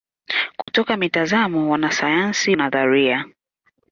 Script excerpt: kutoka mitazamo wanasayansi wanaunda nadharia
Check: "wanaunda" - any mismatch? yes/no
yes